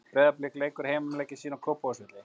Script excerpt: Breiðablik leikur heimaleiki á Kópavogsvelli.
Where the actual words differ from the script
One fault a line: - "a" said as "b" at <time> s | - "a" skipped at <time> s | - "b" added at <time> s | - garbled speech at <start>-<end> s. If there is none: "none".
- "sína" added at 1.4 s